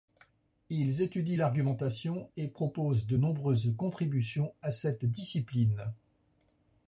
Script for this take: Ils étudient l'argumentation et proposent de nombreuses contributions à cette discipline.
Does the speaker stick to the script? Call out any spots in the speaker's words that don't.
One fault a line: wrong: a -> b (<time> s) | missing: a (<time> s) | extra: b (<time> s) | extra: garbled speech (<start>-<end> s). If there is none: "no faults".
no faults